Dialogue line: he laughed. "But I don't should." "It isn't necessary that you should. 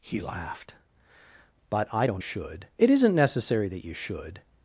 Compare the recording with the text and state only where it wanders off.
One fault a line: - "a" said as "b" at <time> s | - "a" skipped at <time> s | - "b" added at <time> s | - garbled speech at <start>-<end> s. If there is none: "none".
none